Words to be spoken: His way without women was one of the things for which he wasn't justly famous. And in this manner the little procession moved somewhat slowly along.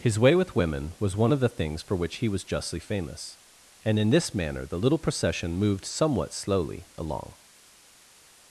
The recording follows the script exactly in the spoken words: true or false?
false